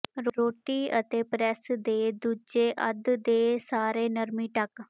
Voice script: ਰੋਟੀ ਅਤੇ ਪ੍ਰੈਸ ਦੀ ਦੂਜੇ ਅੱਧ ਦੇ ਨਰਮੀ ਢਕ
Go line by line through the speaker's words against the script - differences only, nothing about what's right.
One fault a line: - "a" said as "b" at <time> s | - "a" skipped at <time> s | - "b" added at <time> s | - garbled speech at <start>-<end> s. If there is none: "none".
- "ਦੀ" said as "ਦੇ" at 1.8 s
- "ਸਾਰੇ" added at 3.6 s